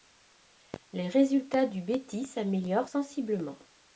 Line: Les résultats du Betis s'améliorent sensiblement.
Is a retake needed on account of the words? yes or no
no